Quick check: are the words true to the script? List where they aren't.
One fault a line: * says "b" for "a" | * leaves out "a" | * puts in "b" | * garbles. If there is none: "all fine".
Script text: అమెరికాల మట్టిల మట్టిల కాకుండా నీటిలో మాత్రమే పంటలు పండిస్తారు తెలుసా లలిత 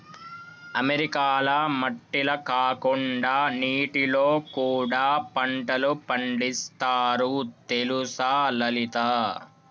* leaves out "మట్టిల"
* says "కూడా" for "మాత్రమే"